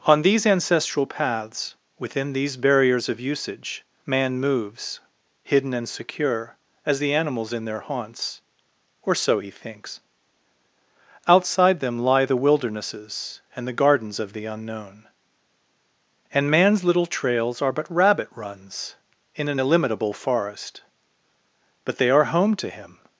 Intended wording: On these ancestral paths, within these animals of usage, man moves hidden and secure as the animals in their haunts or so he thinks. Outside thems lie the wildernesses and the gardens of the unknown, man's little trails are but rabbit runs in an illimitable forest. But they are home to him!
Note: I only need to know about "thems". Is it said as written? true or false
false